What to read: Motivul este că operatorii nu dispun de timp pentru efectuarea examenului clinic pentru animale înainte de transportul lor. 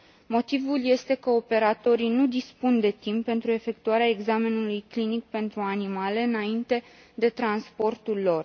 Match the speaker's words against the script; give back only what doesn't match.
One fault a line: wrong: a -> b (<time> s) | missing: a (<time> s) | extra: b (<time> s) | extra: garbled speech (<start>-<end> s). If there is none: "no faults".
no faults